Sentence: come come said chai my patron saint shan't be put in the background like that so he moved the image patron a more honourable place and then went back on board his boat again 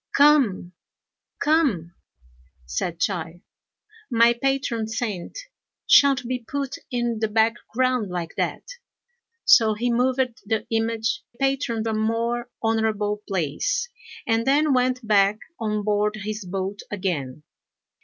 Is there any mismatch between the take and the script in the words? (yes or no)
no